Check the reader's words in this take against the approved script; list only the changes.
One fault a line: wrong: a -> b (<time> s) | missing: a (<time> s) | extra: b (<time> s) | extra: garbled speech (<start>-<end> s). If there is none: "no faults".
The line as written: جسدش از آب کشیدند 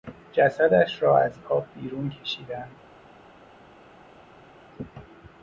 extra: را (1.0 s)
extra: بیرون (1.8 s)